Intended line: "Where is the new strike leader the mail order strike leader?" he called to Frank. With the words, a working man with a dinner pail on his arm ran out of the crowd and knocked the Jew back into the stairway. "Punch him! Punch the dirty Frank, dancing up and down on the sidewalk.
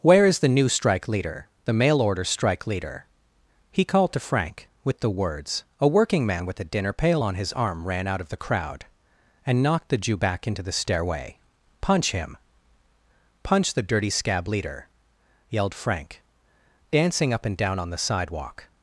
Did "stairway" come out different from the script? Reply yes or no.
no